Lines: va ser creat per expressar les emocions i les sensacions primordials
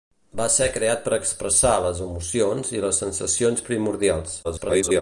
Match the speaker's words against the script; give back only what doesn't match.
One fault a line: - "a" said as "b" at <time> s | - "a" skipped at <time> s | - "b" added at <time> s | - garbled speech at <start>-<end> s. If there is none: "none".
- garbled speech at 4.4-5.0 s